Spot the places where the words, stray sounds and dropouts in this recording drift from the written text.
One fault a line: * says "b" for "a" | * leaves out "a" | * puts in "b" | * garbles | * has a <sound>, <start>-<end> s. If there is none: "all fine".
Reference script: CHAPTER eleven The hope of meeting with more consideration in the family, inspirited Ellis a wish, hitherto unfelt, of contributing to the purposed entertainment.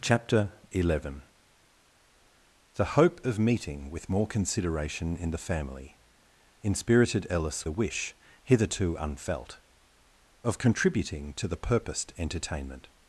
all fine